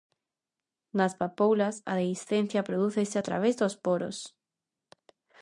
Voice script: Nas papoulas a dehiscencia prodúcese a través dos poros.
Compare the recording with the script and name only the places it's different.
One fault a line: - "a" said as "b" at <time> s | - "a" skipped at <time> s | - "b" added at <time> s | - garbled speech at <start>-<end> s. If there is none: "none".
none